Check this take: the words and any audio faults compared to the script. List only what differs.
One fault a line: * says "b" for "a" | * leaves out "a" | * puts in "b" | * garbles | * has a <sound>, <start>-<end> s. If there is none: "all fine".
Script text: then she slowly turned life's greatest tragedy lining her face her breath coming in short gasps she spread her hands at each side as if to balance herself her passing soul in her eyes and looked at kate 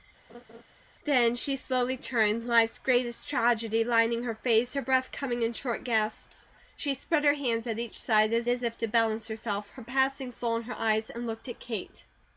* has a laugh, 0.3-0.6 s
* puts in "as"